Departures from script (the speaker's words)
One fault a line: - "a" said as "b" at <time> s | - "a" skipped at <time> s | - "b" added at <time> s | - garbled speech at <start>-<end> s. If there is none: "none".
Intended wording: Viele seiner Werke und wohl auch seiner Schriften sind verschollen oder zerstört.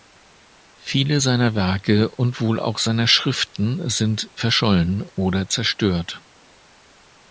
none